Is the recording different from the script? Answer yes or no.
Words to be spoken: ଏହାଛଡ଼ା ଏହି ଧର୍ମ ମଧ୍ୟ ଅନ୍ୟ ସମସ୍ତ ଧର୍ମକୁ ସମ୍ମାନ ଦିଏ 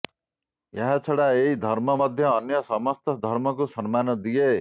no